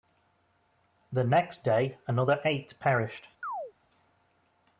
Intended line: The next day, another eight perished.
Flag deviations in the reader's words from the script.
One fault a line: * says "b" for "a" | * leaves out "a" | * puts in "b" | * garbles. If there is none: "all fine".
all fine